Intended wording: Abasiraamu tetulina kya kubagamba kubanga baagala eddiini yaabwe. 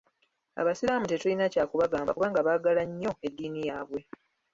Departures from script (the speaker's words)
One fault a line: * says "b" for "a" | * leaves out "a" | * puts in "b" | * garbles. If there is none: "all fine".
* puts in "nnyo"